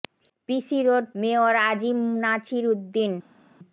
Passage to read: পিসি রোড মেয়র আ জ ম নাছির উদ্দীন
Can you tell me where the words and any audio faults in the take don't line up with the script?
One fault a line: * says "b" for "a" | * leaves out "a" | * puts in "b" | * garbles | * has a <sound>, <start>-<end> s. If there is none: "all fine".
all fine